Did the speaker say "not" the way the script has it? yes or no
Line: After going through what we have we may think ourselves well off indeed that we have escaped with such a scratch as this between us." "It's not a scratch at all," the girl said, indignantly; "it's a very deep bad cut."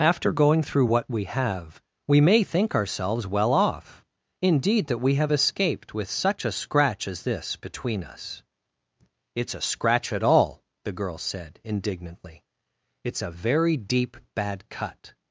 no